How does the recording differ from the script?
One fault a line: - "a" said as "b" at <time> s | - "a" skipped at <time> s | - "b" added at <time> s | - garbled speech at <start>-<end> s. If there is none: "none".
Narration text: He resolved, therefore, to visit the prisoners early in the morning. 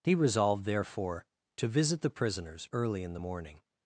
none